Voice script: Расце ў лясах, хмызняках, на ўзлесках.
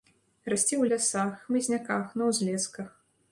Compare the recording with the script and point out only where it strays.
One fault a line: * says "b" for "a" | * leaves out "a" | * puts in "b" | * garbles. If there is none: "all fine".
all fine